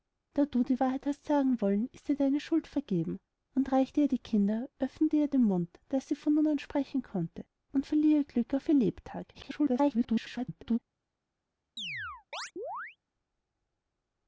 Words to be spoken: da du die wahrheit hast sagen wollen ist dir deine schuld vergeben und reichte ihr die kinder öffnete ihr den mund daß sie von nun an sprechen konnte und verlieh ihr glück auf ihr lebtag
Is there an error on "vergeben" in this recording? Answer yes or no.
no